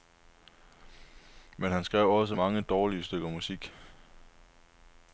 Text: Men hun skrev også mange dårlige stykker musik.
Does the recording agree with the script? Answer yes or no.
no